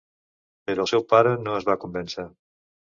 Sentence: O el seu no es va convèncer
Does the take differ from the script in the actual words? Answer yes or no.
yes